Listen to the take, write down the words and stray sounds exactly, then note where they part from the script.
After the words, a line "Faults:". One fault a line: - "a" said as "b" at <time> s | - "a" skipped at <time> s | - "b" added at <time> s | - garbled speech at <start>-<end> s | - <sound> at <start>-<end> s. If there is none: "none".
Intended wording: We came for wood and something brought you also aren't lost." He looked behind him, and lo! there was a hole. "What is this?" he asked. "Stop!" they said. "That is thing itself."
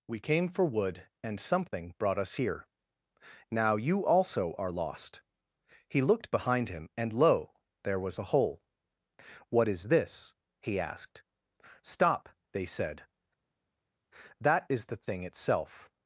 We came for wood and something brought us here. Now you also are lost." He looked behind him, and lo! there was a hole. "What is this?" he asked. "Stop!" they said. "That is the thing itself."
Faults:
- "us here Now" added at 2.2 s
- "aren't" said as "are" at 4.5 s
- "the" added at 14.8 s